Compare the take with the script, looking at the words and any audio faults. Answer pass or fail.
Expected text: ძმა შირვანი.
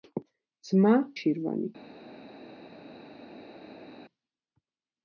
pass